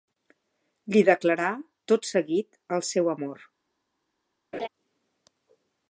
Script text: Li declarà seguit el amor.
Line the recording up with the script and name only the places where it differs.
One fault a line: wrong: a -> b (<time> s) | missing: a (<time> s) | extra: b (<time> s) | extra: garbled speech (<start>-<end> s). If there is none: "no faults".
extra: tot (1.9 s)
extra: seu (2.9 s)